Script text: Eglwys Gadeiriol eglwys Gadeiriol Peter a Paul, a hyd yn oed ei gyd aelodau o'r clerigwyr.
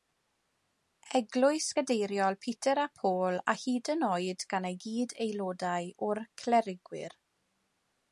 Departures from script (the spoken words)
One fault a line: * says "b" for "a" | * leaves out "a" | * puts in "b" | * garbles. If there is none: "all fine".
* leaves out "eglwys Gadeiriol"
* puts in "gan"